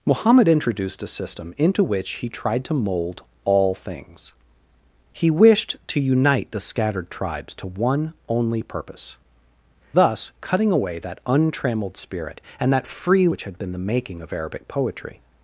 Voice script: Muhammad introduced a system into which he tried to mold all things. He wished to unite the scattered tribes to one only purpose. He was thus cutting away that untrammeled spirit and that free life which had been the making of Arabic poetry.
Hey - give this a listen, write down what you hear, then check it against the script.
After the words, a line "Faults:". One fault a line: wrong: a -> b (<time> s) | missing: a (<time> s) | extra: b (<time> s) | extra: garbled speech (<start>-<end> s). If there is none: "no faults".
Muhammad introduced a system into which he tried to mold all things. He wished to unite the scattered tribes to one only purpose. Thus cutting away that untrammeled spirit and that free which had been the making of Arabic poetry.
Faults:
missing: He was (9.2 s)
missing: life (13.3 s)